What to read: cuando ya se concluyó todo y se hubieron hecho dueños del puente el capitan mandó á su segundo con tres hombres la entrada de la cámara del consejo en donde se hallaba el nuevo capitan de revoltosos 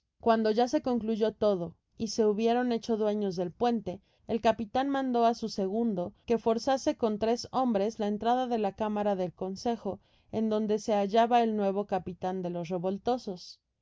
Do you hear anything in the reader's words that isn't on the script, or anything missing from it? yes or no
yes